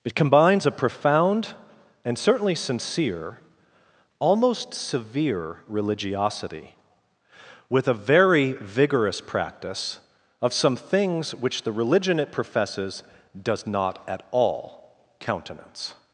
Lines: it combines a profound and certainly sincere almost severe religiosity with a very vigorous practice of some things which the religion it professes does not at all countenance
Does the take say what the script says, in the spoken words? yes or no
yes